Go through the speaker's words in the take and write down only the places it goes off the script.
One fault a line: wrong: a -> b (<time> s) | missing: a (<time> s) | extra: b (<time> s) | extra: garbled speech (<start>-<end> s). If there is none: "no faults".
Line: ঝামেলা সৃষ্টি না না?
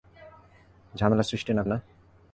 no faults